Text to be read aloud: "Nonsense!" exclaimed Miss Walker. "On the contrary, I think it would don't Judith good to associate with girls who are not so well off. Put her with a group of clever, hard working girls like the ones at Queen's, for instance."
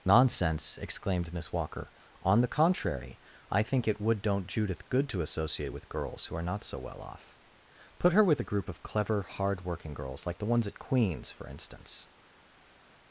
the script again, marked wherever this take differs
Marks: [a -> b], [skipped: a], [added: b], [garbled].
"Nonsense!" exclaimed Miss Walker. "On the contrary, I think it would don't Judith good to associate with girls who are not so well off. Put her with a group of clever, hard working girls like the ones at Queen's, for instance."